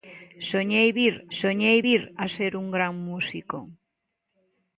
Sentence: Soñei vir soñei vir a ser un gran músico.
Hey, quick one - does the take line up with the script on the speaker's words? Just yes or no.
yes